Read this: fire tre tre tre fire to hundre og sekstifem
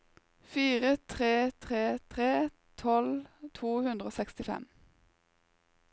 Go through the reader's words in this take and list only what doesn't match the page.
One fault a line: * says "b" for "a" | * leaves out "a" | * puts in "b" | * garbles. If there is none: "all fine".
* says "tolv" for "fire"